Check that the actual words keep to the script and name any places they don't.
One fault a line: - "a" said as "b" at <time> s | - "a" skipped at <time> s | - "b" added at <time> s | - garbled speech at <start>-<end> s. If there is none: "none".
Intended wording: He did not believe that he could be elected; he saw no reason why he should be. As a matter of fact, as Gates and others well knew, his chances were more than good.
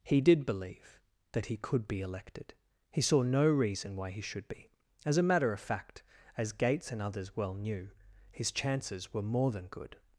- "not" skipped at 0.5 s